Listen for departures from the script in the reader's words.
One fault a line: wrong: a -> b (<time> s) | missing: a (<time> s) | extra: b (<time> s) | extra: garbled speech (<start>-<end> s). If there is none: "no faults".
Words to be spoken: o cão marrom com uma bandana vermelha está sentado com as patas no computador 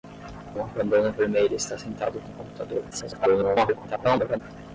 missing: cão marrom com (0.6 s)
missing: as patas (2.3 s)
extra: garbled speech (2.9-4.4 s)